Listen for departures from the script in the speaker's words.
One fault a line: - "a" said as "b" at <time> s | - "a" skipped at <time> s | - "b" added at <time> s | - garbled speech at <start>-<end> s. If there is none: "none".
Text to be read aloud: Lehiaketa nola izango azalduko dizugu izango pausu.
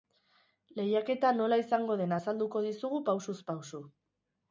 - "den" added at 2.0 s
- "izango" said as "pausuz" at 3.1 s